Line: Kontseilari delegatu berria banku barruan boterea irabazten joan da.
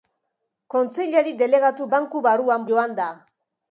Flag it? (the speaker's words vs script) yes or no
yes